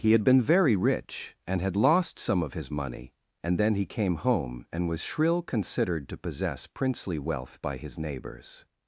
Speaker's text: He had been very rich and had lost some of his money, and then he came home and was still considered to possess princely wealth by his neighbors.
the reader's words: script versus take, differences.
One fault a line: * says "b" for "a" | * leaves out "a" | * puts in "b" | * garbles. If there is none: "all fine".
* says "shrill" for "still"